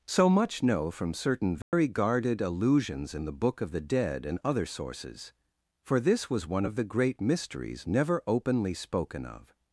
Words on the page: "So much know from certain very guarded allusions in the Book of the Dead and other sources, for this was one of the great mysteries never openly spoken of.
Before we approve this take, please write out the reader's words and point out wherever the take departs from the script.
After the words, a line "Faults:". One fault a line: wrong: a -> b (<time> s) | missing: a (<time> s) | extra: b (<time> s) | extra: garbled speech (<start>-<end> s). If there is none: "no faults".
"So much know from certain very guarded allusions in the Book of the Dead and other sources, for this was one of the great mysteries never openly spoken of.
Faults:
no faults